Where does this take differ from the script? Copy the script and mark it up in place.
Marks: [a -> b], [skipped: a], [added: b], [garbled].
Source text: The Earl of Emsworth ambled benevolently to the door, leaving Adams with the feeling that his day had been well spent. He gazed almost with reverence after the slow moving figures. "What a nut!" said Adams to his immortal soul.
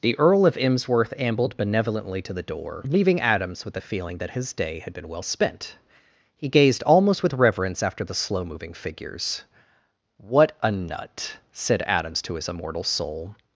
The Earl of Emsworth ambled benevolently to the door, leaving Adams with the feeling that his day had been well spent. He gazed almost with reverence after the slow moving figures. "What a nut!" said Adams to his immortal soul.